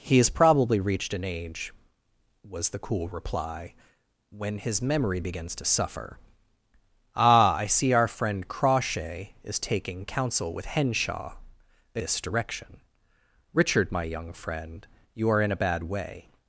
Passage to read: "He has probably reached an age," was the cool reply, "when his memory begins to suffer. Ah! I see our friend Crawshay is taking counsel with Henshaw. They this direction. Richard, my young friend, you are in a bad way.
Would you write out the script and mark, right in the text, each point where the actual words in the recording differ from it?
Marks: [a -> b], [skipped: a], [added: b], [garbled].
"He has probably reached an age," was the cool reply, "when his memory begins to suffer. Ah! I see our friend Crawshay is taking counsel with Henshaw. They this direction. Richard, my young friend, you are in a bad way.